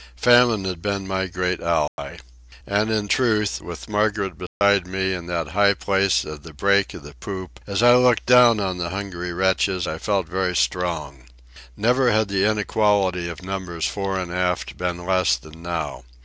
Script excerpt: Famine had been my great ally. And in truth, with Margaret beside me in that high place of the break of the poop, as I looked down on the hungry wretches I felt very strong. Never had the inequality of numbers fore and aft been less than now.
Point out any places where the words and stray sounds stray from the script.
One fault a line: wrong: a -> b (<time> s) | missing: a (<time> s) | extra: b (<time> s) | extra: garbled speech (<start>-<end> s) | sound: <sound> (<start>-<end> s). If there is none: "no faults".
sound: dropout (1.9-2.0 s)
sound: dropout (4.5-4.6 s)